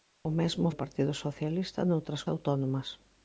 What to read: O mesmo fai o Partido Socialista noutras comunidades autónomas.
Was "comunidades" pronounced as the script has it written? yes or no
no